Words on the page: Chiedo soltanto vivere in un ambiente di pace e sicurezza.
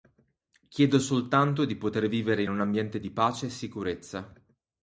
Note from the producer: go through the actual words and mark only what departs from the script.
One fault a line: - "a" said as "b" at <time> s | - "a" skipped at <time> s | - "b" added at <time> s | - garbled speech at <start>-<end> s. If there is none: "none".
- "di poter" added at 1.6 s